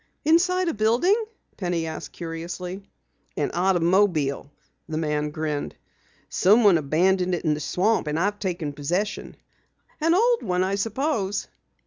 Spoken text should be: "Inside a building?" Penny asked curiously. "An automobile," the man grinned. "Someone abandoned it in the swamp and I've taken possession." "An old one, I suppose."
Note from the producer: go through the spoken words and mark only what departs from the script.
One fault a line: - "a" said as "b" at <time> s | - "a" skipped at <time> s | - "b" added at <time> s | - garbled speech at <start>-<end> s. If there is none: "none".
none